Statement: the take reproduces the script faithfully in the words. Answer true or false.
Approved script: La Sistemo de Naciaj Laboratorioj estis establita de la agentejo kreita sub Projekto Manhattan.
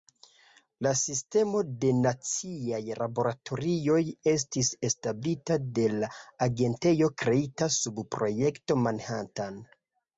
true